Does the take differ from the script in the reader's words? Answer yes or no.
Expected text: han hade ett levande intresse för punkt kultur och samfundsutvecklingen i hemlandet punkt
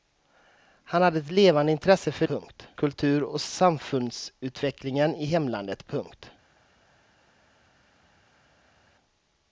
no